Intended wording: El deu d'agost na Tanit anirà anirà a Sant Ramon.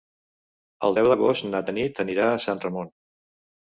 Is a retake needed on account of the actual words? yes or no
yes